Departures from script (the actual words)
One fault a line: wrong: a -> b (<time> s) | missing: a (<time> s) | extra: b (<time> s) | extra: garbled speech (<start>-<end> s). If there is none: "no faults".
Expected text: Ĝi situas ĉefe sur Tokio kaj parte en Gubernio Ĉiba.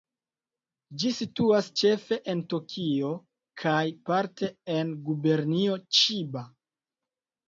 wrong: sur -> en (2.3 s)